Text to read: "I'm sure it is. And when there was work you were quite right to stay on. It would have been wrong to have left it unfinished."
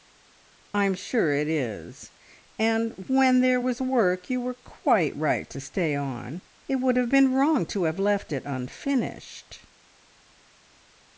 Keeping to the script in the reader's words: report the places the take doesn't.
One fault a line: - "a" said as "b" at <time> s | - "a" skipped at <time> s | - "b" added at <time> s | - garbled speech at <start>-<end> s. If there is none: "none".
none